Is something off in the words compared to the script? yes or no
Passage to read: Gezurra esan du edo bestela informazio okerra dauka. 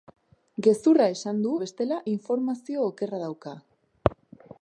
yes